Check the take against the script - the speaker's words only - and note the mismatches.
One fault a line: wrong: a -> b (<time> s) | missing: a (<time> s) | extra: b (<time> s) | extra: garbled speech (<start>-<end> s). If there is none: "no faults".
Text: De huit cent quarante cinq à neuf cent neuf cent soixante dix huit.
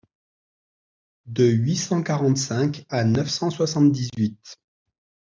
missing: neuf cent (3.5 s)